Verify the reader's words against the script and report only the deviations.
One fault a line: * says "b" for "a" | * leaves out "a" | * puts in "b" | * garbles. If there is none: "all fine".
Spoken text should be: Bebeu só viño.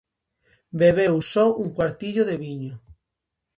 * puts in "un cuartillo de"